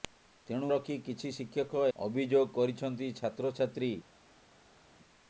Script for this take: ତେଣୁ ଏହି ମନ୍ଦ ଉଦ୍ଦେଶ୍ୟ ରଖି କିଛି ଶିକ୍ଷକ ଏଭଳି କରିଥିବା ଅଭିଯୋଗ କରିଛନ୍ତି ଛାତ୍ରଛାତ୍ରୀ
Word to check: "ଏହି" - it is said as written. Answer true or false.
false